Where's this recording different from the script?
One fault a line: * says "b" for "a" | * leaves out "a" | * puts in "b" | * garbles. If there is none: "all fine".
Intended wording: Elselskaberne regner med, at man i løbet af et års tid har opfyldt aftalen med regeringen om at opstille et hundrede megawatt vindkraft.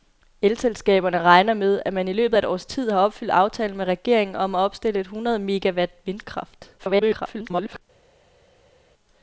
* garbles